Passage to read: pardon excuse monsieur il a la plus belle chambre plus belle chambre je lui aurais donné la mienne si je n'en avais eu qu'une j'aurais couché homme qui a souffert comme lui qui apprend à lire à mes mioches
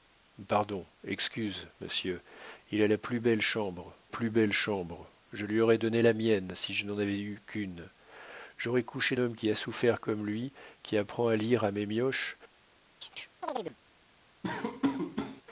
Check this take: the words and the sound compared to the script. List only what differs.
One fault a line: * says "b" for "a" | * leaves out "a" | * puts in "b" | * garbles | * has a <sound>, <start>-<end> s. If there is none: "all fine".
* has a chirp, 13.0-13.8 s
* has a laugh, 14.4-15.4 s